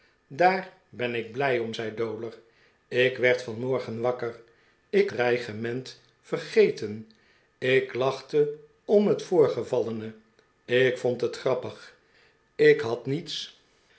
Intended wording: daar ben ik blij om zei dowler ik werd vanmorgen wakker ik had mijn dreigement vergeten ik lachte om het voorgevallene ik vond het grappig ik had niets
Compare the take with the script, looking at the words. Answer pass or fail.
fail